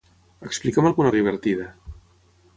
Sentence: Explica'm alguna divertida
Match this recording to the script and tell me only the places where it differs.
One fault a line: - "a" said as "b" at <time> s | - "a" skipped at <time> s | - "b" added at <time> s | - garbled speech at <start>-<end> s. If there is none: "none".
none